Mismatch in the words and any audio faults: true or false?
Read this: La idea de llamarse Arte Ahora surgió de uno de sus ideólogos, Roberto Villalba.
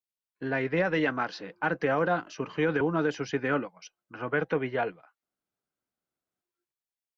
false